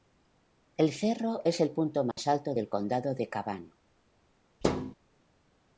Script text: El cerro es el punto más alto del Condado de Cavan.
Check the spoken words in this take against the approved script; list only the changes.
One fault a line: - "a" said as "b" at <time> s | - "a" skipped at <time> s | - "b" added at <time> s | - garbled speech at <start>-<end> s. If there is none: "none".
none